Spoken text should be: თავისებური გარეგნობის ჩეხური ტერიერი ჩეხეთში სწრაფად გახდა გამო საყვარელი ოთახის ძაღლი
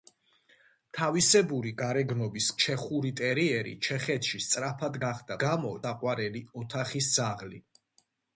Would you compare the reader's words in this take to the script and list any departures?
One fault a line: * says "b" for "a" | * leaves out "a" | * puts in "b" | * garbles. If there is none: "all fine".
all fine